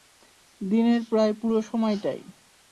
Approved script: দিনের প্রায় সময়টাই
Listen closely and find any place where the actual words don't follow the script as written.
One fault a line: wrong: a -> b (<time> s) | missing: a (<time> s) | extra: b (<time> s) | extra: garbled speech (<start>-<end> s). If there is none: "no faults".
extra: পুরো (1.4 s)